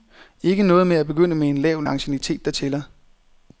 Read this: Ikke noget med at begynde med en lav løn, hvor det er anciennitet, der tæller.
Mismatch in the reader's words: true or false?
true